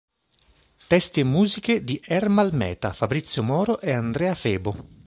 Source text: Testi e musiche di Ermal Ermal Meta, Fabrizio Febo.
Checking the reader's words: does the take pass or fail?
fail